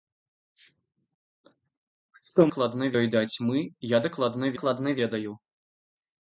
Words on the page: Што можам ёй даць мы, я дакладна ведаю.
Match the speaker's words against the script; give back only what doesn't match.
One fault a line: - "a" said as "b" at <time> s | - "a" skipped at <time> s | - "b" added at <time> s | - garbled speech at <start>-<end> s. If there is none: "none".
- "можам" said as "дакладна" at 2.5 s
- "дакладна" added at 4.6 s